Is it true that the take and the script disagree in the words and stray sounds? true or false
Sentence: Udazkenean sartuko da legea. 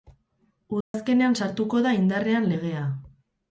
true